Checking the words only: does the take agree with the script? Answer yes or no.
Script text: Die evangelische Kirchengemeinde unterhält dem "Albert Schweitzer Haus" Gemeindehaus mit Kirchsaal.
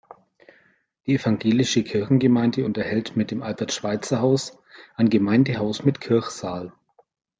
no